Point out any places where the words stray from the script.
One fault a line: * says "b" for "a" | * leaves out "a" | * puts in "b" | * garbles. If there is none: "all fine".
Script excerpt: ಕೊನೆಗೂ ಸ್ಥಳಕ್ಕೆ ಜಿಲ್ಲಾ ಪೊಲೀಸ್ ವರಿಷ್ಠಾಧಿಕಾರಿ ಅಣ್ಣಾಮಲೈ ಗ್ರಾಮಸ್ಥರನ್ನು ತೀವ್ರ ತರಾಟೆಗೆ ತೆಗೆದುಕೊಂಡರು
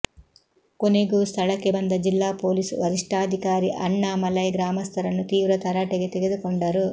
* puts in "ಬಂದ"